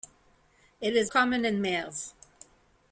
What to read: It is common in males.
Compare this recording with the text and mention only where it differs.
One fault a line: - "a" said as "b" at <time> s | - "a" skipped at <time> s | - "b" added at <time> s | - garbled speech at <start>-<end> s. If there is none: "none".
none